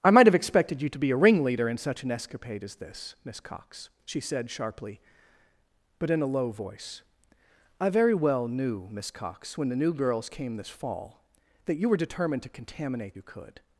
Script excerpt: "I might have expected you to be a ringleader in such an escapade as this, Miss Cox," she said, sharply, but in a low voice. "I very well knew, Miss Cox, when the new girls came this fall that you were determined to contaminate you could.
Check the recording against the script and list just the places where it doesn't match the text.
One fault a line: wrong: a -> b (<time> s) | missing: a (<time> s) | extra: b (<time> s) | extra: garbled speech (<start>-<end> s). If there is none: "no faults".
no faults